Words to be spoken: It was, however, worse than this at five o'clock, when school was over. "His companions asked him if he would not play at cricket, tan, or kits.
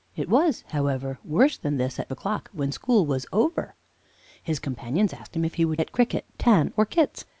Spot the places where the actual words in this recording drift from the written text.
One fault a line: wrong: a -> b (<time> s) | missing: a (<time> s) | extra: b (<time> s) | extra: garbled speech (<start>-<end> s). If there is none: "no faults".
missing: five (2.1 s)
missing: not play (5.8 s)